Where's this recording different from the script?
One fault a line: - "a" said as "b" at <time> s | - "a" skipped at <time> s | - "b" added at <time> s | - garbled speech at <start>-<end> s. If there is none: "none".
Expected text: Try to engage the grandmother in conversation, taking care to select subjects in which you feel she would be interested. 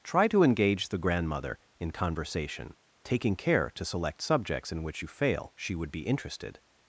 - "feel" said as "fail" at 5.1 s